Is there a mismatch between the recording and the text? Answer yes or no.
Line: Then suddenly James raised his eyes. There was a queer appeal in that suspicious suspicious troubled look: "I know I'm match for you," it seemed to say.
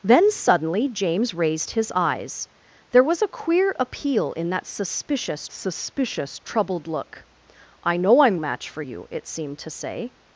no